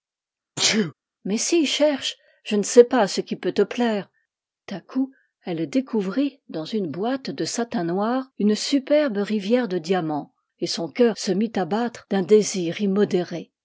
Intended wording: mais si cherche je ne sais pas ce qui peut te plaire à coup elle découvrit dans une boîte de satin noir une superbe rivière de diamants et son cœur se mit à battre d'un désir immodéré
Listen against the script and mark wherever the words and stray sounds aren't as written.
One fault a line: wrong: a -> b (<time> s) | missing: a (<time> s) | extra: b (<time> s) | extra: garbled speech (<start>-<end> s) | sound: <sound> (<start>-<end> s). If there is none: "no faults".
sound: sneeze (0.6-0.9 s)